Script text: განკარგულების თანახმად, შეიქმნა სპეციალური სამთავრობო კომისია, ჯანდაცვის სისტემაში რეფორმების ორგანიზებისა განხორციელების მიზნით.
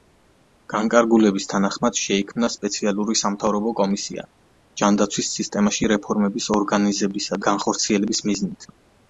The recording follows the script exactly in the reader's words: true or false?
true